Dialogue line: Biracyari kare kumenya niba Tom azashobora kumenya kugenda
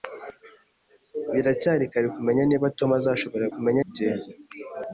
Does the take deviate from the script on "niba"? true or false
false